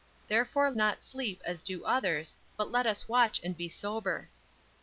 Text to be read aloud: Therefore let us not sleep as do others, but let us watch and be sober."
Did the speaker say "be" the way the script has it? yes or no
yes